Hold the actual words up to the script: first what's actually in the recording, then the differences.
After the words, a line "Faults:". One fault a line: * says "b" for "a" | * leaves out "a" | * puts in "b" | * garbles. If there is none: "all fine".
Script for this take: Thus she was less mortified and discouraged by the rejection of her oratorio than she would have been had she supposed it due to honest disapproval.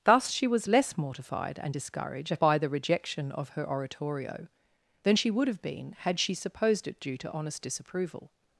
Thus she was less mortified and discouraged by the rejection of her oratorio than she would have been had she supposed it due to honest disapproval.
Faults:
all fine